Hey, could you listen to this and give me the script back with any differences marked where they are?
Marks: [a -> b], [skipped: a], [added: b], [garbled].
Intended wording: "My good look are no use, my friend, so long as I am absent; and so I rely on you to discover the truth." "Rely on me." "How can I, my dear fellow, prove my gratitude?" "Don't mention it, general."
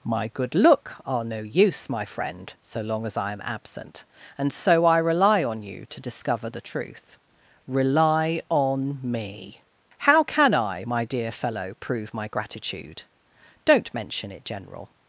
"My good look are no use, my friend, so long as I am absent; and so I rely on you to discover the truth." "Rely on me." "How can I, my dear fellow, prove my gratitude?" "Don't mention it, general."